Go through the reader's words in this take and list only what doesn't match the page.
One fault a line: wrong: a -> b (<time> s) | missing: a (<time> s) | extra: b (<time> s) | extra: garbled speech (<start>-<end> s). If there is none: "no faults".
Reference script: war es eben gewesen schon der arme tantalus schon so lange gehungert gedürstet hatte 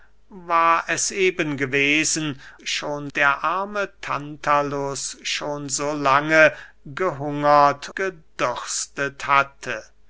no faults